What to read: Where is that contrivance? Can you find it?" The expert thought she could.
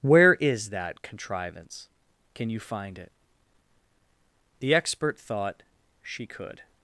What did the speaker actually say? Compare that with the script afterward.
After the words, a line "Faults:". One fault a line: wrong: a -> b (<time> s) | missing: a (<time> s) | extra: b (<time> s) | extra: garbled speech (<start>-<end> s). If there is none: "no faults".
Where is that contrivance? Can you find it?" The expert thought she could.
Faults:
no faults